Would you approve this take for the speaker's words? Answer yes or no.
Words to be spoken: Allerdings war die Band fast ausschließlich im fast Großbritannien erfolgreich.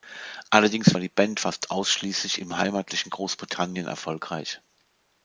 no